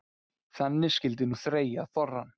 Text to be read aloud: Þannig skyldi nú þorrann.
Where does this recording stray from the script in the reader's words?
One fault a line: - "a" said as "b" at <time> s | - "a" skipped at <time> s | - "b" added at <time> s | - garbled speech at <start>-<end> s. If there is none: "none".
- "þreyja" added at 1.4 s